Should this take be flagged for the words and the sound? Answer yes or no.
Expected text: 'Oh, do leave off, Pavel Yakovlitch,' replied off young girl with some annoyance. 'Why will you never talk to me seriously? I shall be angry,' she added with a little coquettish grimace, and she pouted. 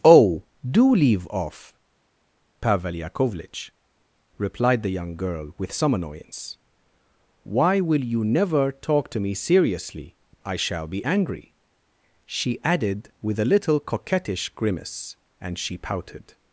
yes